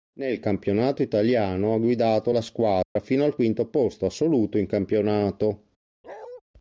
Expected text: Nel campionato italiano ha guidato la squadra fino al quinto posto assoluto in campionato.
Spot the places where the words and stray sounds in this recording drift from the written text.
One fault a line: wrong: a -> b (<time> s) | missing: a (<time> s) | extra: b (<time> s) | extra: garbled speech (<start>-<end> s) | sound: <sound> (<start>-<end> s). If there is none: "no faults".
sound: dropout (2.8-3.0 s)
sound: bark (6.0-6.4 s)